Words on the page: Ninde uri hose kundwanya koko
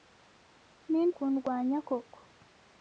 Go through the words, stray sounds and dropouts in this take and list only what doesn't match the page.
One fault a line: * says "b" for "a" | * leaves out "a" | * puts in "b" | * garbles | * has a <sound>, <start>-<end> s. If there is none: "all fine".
* leaves out "uri hose"